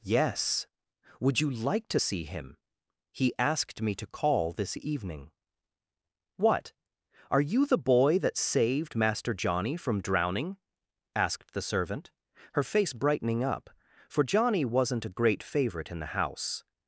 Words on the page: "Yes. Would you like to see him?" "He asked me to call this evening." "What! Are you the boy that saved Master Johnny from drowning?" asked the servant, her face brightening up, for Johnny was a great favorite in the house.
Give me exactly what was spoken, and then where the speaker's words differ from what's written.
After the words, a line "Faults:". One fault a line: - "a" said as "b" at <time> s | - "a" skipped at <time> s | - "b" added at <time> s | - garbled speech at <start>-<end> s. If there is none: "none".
"Yes. Would you like to see him?" "He asked me to call this evening." "What! Are you the boy that saved Master Johnny from drowning?" asked the servant, her face brightening up, for Johnny wasn't a great favorite in the house.
Faults:
- "was" said as "wasn't" at 14.6 s